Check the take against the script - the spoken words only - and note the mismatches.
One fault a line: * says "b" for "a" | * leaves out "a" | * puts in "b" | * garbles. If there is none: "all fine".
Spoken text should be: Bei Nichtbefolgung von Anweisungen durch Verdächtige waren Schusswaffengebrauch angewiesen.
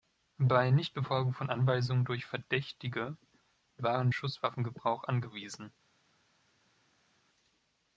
all fine